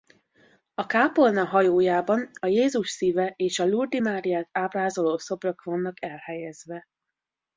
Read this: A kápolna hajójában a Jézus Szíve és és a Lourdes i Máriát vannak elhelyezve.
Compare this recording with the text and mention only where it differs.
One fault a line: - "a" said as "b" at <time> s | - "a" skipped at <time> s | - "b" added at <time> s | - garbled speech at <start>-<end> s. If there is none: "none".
- "és" skipped at 3.6 s
- "ábrázoló szobrok" added at 4.5 s